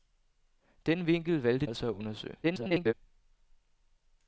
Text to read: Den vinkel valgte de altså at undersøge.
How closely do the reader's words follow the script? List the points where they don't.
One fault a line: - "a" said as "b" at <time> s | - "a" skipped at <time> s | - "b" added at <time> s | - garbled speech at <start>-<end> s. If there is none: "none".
- "de" skipped at 1.6 s
- garbled speech at 2.4-2.9 s